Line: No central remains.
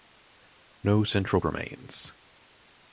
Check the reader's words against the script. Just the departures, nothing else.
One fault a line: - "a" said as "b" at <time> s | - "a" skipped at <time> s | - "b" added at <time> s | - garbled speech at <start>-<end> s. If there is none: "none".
none